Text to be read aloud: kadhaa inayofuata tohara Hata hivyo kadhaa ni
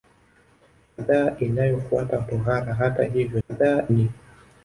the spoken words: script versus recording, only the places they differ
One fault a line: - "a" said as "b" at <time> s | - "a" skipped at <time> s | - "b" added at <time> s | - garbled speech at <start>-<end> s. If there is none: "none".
none